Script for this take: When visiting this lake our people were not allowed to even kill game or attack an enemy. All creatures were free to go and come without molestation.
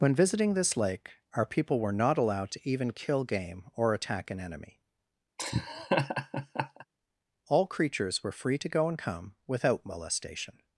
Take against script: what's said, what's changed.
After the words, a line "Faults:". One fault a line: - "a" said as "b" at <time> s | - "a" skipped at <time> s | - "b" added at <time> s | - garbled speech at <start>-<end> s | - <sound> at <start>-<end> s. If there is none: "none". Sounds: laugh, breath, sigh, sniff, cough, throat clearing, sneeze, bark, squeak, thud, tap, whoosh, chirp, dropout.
When visiting this lake our people were not allowed to even kill game or attack an enemy. All creatures were free to go and come without molestation.
Faults:
- laugh at 5.4-6.9 s